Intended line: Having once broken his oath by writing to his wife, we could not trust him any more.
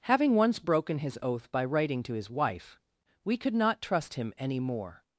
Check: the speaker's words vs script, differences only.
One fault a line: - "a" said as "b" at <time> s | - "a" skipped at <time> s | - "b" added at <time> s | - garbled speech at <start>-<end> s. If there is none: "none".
none